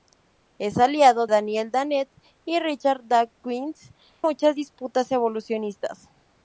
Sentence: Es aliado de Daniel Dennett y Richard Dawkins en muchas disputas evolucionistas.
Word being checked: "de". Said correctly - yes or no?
no